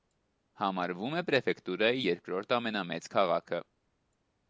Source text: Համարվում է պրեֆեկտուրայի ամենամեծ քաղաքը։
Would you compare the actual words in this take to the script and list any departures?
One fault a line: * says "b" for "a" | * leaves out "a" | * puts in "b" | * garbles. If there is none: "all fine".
* puts in "երկրորդ"